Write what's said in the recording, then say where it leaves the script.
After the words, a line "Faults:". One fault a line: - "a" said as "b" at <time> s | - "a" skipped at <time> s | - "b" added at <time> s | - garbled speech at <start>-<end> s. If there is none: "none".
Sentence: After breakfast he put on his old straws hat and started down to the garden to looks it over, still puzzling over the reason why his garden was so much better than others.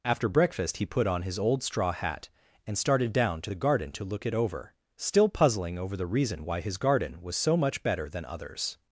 After breakfast he put on his old straw hat and started down to the garden to look it over, still puzzling over the reason why his garden was so much better than others.
Faults:
- "straws" said as "straw" at 1.6 s
- "looks" said as "look" at 4.0 s